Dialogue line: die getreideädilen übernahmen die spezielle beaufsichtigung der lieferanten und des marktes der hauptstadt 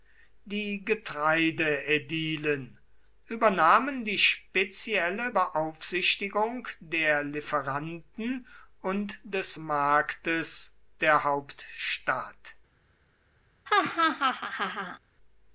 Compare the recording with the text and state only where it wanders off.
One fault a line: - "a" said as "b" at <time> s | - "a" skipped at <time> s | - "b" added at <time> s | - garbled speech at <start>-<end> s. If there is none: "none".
none